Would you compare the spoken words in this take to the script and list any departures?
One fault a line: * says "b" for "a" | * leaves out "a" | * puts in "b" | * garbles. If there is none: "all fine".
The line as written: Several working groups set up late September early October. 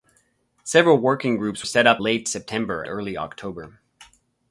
all fine